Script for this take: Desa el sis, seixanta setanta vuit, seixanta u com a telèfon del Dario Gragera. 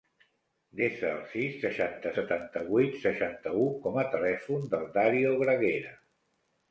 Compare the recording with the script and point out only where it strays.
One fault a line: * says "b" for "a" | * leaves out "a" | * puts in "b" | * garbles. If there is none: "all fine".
all fine